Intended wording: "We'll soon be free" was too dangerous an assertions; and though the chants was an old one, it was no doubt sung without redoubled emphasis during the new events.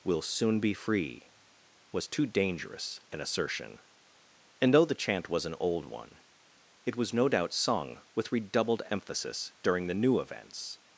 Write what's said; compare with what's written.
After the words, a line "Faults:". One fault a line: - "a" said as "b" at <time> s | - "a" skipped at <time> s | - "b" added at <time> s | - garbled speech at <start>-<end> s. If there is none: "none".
"We'll soon be free" was too dangerous an assertion; and though the chant was an old one, it was no doubt sung with redoubled emphasis during the new events.
Faults:
- "assertions" said as "assertion" at 3.2 s
- "chants" said as "chant" at 4.9 s
- "without" said as "with" at 8.1 s